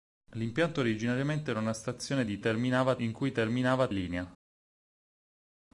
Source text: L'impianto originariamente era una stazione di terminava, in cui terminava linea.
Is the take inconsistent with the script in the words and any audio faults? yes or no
no